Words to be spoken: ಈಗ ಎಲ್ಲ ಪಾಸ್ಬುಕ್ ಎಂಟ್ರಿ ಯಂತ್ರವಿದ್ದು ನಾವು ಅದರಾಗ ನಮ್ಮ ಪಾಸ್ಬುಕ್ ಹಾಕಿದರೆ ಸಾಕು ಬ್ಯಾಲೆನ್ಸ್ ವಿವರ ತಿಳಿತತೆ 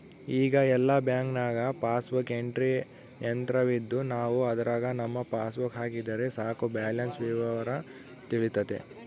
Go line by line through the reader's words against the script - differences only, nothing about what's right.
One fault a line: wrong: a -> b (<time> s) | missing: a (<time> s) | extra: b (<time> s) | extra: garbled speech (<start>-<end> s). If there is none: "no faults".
extra: ಬ್ಯಾಂಕ್ನಾಗ (1.1 s)